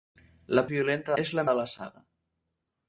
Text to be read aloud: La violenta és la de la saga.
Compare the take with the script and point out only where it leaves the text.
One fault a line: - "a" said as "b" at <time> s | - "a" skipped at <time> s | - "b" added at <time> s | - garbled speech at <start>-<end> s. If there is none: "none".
none